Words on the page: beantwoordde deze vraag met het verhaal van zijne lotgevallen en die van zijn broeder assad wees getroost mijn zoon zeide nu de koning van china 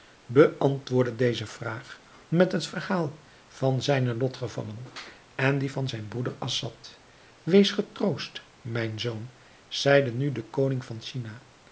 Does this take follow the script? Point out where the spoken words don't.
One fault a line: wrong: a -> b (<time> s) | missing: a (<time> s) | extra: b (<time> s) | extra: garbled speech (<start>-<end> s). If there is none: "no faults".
no faults